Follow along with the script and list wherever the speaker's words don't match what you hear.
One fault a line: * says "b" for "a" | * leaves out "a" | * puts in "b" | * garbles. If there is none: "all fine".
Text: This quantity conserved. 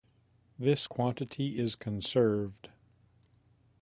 * puts in "is"